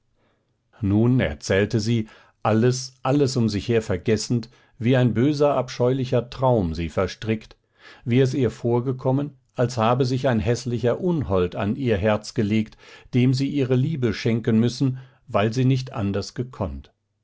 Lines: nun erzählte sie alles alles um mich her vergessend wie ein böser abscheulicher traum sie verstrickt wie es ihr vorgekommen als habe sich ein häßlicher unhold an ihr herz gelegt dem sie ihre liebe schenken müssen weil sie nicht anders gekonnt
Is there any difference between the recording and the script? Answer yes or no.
yes